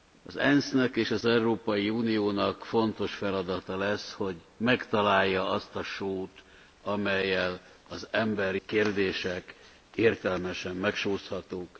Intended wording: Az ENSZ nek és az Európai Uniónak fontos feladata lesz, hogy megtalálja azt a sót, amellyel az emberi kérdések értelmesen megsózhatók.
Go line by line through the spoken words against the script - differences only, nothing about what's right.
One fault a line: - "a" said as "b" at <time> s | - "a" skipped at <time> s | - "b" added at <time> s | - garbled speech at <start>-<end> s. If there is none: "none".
none